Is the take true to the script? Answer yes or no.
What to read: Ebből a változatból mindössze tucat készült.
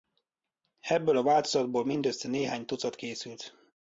no